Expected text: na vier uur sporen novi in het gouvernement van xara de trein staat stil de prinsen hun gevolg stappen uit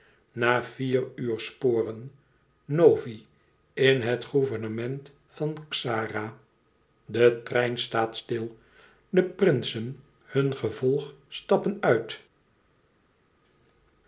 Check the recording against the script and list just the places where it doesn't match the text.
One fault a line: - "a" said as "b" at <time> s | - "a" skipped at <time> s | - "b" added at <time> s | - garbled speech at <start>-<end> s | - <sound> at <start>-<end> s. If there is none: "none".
none